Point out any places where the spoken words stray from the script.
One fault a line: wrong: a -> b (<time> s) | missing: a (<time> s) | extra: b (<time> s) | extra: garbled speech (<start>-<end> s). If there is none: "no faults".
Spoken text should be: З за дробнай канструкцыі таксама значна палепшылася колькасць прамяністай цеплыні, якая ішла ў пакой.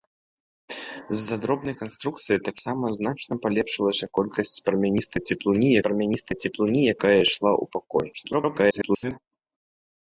extra: прамяністай цеплыні (5.9 s)
extra: garbled speech (8.1-9.2 s)